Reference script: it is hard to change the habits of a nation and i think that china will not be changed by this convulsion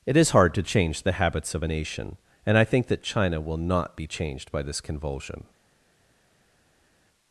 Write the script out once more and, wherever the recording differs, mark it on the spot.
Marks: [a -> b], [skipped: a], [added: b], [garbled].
it is hard to change the habits of a nation and i think that china will not be changed by this convulsion